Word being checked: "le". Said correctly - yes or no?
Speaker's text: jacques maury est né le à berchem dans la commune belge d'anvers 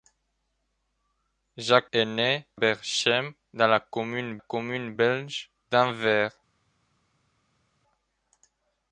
no